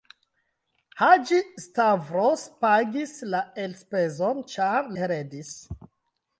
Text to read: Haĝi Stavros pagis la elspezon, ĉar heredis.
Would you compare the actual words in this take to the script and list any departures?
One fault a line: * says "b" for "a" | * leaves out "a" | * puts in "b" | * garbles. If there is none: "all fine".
all fine